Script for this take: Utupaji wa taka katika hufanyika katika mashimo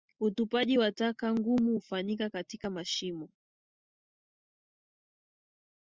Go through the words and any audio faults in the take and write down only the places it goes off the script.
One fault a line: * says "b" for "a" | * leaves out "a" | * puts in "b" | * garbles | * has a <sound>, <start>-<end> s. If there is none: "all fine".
* says "ngumu" for "katika"